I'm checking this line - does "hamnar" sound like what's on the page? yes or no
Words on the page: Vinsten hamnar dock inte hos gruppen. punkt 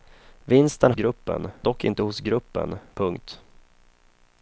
no